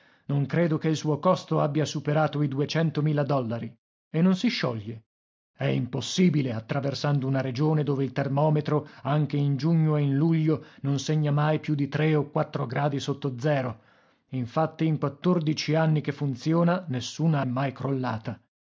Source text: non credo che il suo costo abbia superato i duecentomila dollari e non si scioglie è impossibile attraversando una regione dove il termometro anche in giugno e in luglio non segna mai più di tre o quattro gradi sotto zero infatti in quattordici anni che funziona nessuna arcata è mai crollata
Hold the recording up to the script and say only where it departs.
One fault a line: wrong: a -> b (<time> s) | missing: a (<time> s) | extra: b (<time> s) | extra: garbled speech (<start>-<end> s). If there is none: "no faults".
missing: arcata (17.4 s)